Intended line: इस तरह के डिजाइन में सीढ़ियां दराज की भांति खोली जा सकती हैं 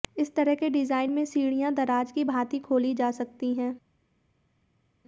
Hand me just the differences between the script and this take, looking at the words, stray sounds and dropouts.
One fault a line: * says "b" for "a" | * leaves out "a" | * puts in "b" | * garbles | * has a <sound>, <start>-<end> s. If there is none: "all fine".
all fine